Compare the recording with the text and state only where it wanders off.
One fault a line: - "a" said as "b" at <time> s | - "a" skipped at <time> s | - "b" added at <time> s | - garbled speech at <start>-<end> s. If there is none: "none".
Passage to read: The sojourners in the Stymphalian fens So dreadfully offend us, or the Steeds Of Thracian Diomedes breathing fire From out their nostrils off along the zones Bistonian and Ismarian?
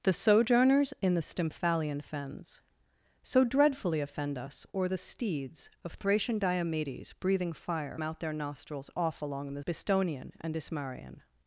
- "From" skipped at 8.0 s
- "zones" skipped at 9.6 s